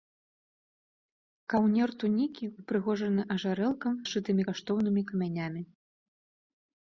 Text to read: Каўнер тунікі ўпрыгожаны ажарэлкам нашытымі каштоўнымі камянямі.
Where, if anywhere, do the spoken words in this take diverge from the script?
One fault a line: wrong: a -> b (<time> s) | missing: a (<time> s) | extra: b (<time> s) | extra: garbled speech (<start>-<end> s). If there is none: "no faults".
no faults